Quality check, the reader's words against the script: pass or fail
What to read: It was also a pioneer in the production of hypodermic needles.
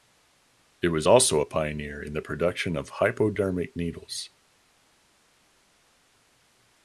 pass